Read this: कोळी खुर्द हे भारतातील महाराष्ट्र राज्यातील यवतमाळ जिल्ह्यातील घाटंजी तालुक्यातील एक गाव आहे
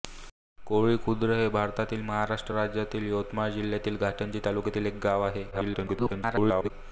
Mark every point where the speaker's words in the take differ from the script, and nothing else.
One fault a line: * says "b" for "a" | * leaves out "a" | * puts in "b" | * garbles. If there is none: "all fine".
* garbles